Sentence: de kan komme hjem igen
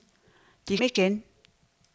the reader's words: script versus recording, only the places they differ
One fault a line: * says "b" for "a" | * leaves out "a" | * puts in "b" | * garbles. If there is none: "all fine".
* leaves out "kan komme hjem"